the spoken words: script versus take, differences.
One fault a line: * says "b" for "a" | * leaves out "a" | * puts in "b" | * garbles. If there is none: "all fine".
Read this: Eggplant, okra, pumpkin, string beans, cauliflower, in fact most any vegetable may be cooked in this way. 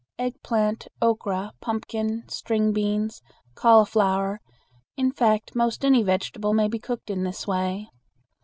all fine